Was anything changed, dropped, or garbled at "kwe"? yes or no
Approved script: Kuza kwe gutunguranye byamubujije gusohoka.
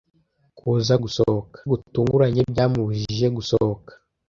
yes